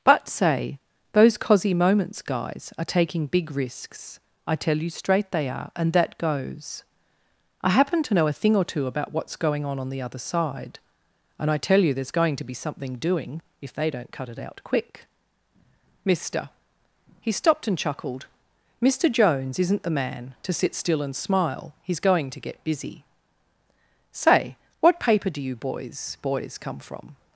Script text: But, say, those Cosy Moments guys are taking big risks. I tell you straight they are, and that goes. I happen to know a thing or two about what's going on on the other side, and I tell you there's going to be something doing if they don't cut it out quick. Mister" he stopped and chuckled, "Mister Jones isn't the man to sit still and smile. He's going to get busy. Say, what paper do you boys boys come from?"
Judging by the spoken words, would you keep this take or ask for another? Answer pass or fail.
pass